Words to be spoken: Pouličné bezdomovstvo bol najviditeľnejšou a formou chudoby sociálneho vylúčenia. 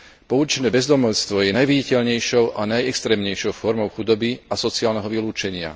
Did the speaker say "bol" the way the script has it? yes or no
no